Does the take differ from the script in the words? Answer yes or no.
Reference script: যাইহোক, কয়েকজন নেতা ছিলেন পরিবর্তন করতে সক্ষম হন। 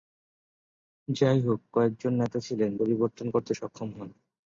no